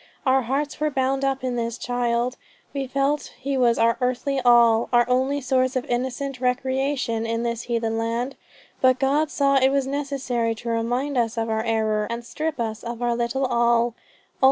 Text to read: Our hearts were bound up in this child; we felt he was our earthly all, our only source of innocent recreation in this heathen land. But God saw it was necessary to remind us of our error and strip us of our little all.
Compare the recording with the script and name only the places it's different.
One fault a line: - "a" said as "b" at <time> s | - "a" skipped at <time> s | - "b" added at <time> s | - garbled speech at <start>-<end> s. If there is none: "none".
none